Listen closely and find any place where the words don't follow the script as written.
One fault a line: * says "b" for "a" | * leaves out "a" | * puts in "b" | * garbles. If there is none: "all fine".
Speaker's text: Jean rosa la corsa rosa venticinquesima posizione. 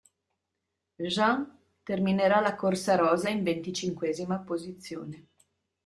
* says "terminerà" for "rosa"
* puts in "in"